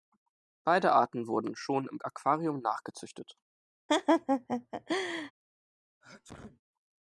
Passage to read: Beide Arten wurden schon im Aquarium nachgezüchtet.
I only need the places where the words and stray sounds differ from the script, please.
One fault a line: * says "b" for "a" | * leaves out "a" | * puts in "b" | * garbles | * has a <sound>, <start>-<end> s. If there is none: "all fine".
* has a laugh, 3.9-5.3 s
* has a sneeze, 6.0-6.6 s